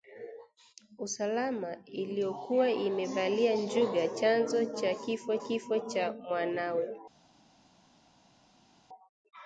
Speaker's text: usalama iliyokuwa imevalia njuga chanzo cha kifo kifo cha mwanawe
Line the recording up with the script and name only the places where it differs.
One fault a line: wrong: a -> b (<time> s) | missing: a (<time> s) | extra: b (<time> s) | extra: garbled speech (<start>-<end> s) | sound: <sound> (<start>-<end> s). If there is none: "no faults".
no faults